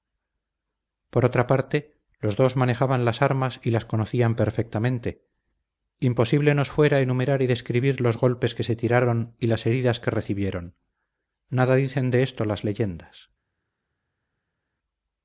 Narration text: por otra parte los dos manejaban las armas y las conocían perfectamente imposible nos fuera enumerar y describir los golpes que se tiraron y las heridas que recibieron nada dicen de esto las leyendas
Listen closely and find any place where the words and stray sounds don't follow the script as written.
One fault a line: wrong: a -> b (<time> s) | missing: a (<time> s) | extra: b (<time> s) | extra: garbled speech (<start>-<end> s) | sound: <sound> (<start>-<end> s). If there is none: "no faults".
no faults